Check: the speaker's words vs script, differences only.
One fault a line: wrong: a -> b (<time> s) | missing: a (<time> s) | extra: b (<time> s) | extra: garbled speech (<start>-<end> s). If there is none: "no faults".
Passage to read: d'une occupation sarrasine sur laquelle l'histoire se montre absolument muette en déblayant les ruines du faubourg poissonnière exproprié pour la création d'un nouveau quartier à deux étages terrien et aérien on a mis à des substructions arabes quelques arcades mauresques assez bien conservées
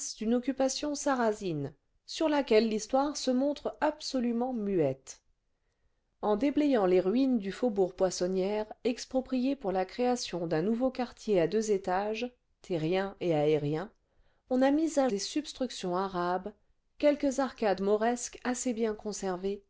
no faults